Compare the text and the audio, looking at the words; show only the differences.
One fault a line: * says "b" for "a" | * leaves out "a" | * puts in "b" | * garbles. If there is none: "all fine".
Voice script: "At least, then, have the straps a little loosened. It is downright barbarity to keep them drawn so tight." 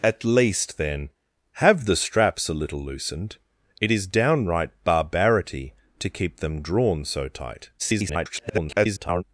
* garbles